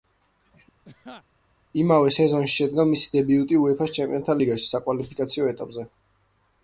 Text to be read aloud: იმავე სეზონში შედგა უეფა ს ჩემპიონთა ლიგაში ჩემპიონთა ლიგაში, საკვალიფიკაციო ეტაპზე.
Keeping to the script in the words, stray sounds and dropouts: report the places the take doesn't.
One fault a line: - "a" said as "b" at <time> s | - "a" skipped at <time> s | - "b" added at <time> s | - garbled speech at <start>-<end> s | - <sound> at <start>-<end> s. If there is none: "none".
- laugh at 0.8-1.2 s
- "მისი დებიუტი" added at 2.9 s
- "ჩემპიონთა ლიგაში" skipped at 4.7 s